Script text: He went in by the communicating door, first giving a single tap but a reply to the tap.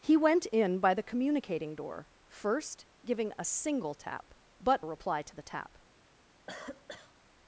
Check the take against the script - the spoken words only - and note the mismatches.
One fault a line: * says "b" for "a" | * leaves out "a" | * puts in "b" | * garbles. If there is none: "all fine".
all fine